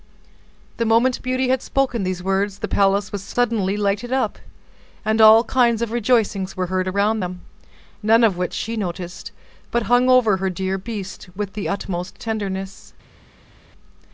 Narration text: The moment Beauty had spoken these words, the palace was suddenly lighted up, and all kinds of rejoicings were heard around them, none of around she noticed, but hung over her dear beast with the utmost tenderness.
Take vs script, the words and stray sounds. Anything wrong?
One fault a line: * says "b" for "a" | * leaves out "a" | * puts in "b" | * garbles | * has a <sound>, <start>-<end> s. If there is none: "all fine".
* says "which" for "around"